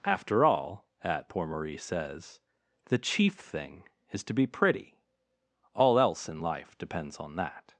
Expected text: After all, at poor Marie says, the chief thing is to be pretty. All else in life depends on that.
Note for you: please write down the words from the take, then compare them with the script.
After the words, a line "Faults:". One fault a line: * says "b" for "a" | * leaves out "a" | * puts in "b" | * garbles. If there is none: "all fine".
After all, at poor Marie says, the chief thing is to be pretty. All else in life depends on that.
Faults:
all fine